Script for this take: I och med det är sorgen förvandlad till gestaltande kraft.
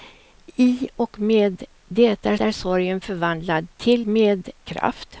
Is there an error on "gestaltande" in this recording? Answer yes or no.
yes